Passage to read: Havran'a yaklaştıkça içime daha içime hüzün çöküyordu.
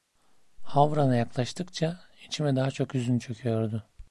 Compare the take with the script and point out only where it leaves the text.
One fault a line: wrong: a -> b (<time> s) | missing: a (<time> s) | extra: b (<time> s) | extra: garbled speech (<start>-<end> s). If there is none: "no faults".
wrong: içime -> çok (2.7 s)